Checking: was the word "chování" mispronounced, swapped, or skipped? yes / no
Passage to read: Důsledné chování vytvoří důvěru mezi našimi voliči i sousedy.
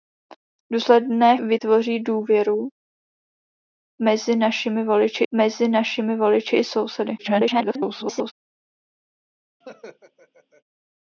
yes